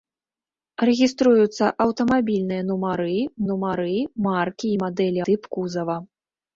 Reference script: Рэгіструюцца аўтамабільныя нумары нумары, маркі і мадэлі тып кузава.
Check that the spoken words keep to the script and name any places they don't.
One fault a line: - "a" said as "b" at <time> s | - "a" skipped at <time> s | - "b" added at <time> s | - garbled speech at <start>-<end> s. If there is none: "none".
none